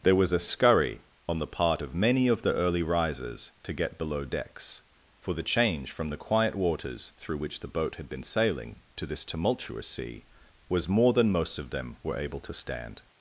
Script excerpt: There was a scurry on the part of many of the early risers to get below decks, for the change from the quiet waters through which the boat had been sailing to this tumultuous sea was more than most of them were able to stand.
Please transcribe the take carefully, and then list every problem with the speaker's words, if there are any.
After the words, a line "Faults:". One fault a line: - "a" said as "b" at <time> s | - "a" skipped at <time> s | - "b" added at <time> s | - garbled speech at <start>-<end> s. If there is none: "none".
There was a scurry on the part of many of the early risers to get below decks, for the change from the quiet waters through which the boat had been sailing to this tumultuous sea was more than most of them were able to stand.
Faults:
none